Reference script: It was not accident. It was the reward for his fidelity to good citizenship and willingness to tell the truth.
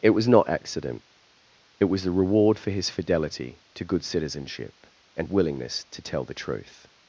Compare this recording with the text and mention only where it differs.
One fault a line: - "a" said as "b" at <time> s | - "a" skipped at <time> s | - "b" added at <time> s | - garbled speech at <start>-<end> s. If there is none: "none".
none